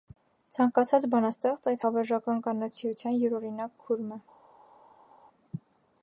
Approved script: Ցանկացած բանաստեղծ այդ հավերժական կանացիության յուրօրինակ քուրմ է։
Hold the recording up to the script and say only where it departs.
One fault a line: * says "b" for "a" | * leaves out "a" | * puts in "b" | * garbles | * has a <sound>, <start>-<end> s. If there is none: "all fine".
all fine